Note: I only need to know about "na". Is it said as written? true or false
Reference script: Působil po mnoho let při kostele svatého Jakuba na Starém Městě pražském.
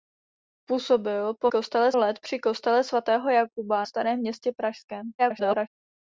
false